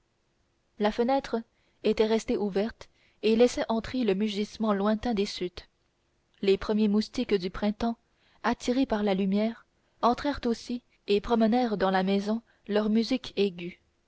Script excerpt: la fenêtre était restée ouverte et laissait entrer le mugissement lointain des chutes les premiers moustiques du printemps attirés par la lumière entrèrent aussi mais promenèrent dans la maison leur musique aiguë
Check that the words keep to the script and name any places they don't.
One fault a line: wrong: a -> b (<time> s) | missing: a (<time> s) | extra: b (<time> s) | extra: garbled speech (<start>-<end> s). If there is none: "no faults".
wrong: mais -> et (11.1 s)